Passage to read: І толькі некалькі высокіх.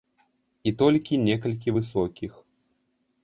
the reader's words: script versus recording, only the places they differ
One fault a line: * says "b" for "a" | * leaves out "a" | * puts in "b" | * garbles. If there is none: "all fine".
all fine